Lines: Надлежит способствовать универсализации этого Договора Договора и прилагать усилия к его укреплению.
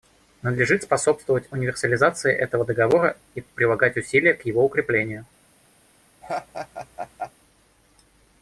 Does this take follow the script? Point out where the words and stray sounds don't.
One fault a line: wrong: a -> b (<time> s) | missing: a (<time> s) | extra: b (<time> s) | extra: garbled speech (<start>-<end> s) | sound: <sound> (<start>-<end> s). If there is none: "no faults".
missing: Договора (3.2 s)
sound: laugh (6.2-7.3 s)